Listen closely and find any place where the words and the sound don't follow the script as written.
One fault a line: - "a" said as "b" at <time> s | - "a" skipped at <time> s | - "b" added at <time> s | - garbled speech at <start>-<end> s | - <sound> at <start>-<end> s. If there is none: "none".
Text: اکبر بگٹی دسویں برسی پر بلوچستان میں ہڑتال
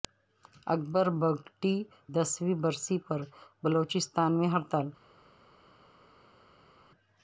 none